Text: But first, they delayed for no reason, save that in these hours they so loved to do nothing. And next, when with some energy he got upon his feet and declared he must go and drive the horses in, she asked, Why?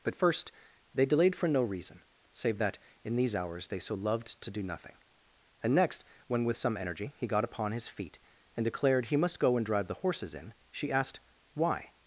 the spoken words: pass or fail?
pass